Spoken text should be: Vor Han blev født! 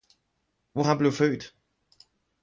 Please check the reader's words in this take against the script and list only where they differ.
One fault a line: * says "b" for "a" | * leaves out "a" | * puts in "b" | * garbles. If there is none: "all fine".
all fine